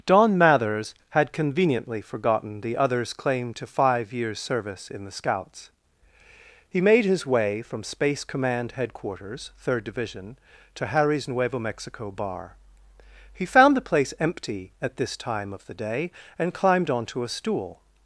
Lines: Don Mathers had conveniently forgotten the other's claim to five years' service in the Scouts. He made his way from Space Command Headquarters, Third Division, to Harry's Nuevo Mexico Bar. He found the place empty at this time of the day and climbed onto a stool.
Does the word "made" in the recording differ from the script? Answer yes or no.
no